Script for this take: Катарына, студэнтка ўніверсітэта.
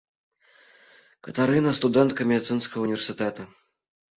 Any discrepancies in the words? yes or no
yes